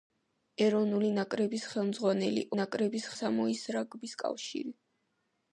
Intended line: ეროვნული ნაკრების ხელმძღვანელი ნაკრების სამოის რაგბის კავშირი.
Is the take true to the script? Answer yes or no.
yes